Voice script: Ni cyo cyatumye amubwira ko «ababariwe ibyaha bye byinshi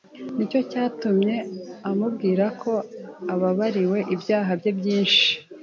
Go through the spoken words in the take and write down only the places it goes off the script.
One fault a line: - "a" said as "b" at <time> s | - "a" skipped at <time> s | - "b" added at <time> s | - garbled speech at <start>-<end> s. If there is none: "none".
none